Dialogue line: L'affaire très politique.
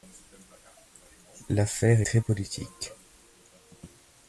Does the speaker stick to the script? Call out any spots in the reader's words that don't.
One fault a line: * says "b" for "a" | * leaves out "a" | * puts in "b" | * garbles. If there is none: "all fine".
all fine